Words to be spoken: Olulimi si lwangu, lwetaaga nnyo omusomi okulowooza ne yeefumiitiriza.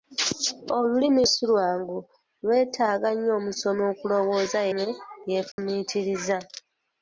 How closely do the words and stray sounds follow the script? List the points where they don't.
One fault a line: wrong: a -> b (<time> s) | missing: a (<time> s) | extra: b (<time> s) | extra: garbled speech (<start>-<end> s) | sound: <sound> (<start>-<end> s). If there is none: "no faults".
sound: dropout (5.5-5.6 s)